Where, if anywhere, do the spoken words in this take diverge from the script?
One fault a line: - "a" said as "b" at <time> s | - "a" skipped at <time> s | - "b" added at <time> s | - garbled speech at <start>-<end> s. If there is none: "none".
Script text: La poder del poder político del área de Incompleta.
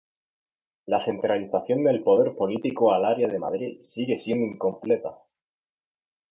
- "poder" said as "centralización" at 1.0 s
- "del" said as "al" at 2.9 s
- "Madrid sigue siendo" added at 3.4 s